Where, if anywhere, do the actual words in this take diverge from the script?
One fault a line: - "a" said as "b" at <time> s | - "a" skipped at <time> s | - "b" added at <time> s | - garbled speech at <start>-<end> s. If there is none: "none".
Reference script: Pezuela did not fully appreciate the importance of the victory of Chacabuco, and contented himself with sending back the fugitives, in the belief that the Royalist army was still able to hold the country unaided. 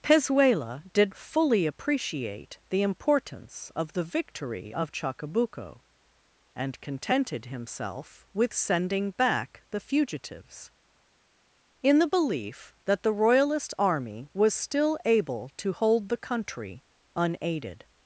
- "not" skipped at 1.1 s